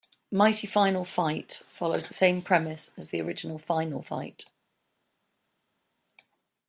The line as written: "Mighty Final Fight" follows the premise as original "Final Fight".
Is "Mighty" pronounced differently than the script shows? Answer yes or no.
no